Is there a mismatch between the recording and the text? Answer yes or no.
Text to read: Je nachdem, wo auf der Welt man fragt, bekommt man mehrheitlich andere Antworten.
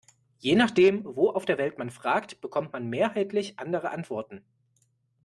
no